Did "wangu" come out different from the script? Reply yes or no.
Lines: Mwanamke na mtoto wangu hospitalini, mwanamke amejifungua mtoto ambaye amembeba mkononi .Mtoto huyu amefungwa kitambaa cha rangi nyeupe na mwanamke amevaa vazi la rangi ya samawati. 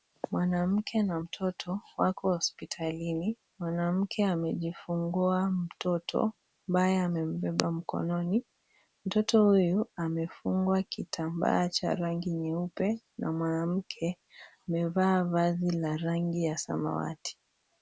yes